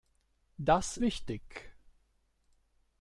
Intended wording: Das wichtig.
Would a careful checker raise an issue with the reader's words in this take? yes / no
no